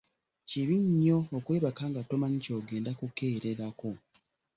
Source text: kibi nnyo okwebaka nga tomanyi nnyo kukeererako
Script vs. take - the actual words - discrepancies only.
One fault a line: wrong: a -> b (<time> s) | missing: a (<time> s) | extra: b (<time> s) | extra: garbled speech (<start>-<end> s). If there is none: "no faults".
wrong: nnyo -> ky'ogenda (2.4 s)